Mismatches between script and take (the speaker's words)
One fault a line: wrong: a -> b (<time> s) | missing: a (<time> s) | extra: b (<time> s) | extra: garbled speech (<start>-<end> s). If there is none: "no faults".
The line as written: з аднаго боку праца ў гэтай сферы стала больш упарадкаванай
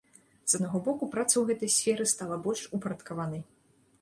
no faults